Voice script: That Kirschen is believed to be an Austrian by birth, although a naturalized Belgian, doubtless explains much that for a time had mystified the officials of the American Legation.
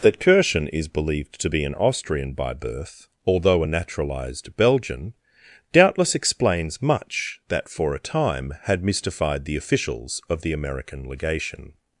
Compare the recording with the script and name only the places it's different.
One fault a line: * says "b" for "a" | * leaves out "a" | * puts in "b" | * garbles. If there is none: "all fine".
all fine